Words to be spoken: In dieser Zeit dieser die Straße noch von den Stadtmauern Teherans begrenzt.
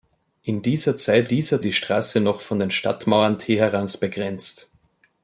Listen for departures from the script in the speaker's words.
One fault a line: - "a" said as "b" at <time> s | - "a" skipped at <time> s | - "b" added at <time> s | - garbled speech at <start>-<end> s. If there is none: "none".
none